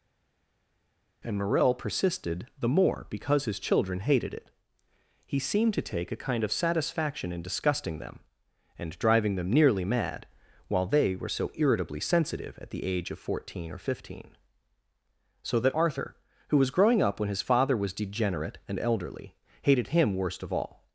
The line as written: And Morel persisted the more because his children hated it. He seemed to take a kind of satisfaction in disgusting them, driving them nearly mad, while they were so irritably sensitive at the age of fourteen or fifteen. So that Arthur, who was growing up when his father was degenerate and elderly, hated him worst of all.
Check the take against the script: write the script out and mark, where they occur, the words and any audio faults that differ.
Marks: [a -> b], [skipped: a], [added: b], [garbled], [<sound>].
And Morel persisted the more because his children hated it. He seemed to take a kind of satisfaction in disgusting them, [added: and] driving them nearly mad, while they were so irritably sensitive at the age of fourteen or fifteen. So that Arthur, who was growing up when his father was degenerate and elderly, hated him worst of all.